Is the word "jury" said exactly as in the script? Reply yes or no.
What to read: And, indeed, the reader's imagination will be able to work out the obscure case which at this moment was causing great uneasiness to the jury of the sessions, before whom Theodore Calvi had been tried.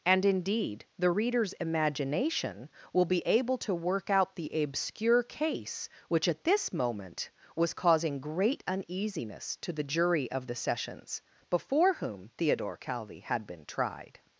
yes